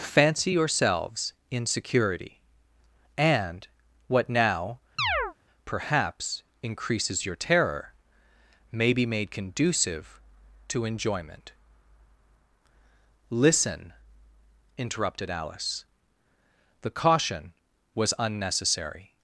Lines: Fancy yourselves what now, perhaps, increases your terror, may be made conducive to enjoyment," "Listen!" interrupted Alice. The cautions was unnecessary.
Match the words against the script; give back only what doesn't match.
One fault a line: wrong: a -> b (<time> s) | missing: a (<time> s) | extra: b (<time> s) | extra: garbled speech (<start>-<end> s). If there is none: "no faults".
extra: in security and (1.5 s)
wrong: cautions -> caution (16.9 s)